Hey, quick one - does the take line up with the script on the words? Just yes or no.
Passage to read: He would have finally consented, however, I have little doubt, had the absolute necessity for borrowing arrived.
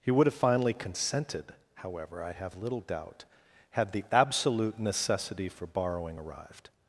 yes